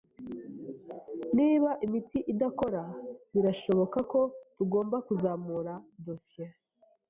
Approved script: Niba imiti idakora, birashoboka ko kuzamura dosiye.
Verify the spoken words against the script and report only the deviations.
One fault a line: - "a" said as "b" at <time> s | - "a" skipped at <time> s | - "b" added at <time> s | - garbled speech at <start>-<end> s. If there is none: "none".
- "tugomba" added at 4.5 s